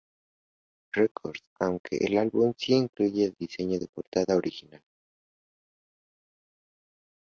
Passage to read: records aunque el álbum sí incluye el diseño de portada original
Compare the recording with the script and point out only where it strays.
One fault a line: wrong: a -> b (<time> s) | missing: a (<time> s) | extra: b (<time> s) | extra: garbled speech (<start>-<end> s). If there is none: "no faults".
no faults